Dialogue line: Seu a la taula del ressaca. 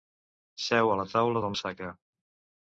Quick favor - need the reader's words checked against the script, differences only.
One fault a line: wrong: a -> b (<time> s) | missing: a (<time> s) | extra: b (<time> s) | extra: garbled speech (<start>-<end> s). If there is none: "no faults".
no faults